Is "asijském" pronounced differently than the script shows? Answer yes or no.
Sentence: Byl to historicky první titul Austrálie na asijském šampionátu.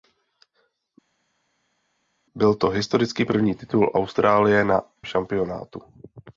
yes